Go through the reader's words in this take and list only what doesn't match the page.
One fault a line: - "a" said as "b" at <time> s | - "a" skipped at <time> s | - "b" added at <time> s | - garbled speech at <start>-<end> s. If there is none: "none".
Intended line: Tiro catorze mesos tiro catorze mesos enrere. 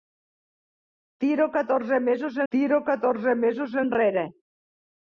none